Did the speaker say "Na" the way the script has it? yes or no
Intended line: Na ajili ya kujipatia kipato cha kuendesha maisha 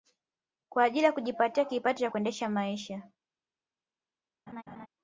no